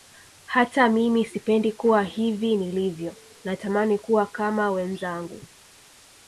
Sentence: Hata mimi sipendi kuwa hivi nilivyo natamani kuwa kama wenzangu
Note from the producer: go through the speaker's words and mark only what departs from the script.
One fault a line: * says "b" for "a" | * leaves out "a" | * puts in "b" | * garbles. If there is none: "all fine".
all fine